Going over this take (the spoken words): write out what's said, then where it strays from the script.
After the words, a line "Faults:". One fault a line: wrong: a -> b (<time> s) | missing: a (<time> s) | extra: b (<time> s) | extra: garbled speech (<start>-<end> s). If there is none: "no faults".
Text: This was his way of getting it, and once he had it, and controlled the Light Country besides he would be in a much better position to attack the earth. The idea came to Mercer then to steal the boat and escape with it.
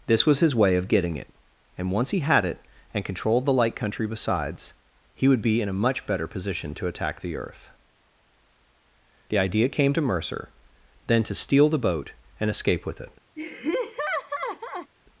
This was his way of getting it, and once he had it, and controlled the Light Country besides he would be in a much better position to attack the earth. The idea came to Mercer then to steal the boat and escape with it.
Faults:
no faults